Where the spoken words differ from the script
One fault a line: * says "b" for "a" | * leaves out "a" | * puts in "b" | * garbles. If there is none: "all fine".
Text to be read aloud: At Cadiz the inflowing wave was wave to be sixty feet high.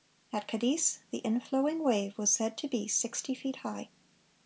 * says "said" for "wave"